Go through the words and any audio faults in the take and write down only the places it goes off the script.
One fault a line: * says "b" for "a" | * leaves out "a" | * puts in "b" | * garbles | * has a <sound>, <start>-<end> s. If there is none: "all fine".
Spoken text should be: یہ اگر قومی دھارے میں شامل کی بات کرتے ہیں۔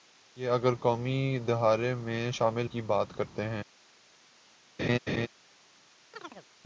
* has a laugh, 4.8-5.3 s
* has a chirp, 6.1-6.5 s